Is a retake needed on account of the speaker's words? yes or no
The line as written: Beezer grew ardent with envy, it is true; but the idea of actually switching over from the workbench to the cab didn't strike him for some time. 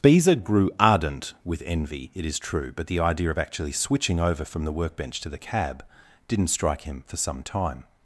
no